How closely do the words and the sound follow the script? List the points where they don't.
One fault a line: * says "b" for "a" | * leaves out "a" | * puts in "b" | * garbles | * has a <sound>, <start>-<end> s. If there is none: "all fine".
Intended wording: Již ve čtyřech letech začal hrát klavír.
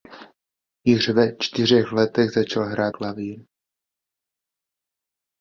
all fine